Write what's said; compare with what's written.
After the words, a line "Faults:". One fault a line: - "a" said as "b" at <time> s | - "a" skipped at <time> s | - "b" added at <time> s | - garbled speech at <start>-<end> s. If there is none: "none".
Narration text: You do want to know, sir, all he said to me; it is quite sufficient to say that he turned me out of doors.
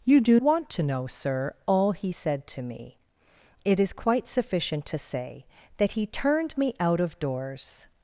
You do want to know, sir, all he said to me; it is quite sufficient to say that he turned me out of doors.
Faults:
none